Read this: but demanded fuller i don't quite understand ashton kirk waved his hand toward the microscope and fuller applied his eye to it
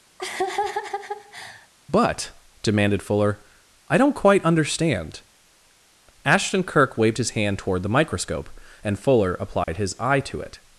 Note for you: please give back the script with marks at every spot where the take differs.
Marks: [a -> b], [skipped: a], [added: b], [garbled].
but demanded fuller i don't quite understand ashton kirk waved his hand toward the microscope and fuller applied his eye to it